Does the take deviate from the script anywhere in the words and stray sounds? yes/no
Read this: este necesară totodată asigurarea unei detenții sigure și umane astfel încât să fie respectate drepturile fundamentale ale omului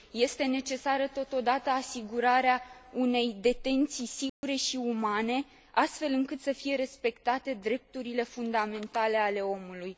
yes